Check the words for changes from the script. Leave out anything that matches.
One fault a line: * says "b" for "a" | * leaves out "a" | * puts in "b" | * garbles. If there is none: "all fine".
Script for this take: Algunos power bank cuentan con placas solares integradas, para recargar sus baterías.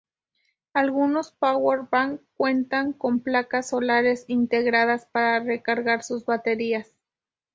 all fine